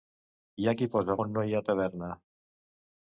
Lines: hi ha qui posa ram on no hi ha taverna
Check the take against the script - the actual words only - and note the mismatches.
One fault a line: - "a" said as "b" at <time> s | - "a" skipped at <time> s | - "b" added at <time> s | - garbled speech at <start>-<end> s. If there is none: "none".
- "ram" skipped at 1.2 s